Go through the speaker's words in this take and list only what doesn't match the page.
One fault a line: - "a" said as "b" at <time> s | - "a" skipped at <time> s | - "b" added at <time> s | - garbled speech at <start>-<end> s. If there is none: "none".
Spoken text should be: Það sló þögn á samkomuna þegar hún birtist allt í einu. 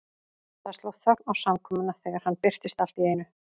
- "hún" said as "hann" at 2.3 s